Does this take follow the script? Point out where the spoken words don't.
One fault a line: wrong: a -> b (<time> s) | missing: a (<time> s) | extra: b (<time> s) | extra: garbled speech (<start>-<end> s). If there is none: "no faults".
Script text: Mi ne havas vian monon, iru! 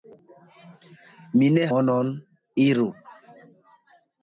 missing: havas vian (1.7 s)